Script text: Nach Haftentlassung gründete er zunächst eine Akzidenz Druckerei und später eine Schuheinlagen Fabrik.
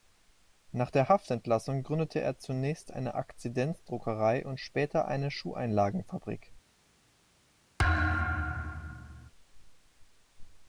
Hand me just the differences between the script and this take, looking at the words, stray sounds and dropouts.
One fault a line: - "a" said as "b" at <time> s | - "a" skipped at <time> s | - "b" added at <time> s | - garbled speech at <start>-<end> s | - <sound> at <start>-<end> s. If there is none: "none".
- "der" added at 0.9 s
- thud at 7.8-9.3 s